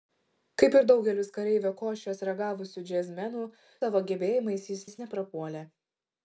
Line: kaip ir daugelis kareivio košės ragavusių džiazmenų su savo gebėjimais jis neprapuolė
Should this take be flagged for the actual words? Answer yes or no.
yes